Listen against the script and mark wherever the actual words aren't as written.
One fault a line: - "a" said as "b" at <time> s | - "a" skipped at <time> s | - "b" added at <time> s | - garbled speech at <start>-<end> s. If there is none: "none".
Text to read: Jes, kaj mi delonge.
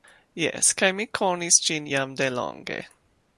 - "konis ĝin jam" added at 1.2 s